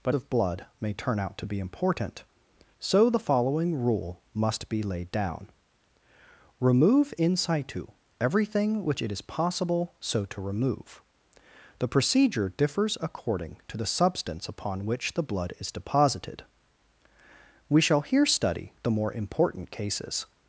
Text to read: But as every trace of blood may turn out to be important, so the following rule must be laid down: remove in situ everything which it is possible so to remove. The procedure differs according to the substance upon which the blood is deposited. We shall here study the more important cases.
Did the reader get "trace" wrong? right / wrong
wrong